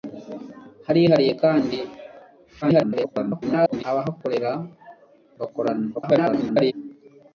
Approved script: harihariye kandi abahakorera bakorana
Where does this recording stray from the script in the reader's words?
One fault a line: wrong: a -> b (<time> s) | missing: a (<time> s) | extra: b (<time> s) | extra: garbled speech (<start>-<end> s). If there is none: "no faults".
extra: garbled speech (2.6-3.8 s)
extra: garbled speech (5.9-6.7 s)